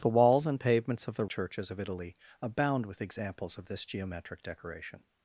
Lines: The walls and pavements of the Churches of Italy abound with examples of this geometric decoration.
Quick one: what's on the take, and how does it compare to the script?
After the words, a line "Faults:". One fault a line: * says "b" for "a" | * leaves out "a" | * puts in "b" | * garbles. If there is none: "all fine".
The walls and pavements of the Churches of Italy abound with examples of this geometric decoration.
Faults:
all fine